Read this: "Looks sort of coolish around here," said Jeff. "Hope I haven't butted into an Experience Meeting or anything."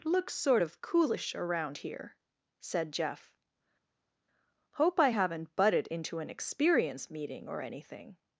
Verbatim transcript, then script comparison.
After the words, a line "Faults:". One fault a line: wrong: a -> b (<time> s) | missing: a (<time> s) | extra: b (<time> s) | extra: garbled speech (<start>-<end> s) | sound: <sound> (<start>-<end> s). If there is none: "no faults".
"Looks sort of coolish around here," said Jeff. "Hope I haven't butted into an Experience Meeting or anything."
Faults:
no faults